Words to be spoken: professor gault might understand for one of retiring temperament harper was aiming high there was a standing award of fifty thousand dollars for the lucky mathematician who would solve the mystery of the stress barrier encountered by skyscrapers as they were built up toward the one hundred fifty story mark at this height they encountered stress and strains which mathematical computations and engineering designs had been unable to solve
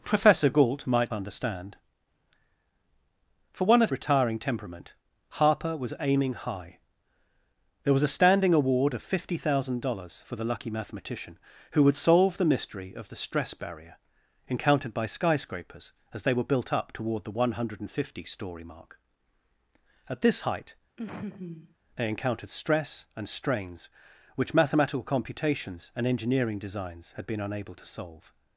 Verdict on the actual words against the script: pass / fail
pass